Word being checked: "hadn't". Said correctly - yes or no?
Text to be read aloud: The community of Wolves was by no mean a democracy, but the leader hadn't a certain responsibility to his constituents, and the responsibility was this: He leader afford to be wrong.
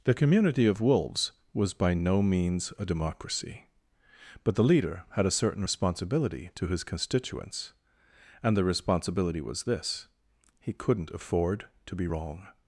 no